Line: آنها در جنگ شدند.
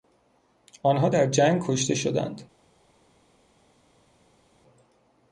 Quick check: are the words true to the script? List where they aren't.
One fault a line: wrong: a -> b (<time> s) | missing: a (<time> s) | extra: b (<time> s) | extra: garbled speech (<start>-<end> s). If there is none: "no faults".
extra: کشته (1.7 s)